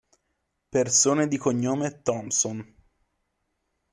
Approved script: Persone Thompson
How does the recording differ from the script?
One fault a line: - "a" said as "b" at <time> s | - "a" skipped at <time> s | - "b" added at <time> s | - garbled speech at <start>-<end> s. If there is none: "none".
- "di cognome" added at 1.3 s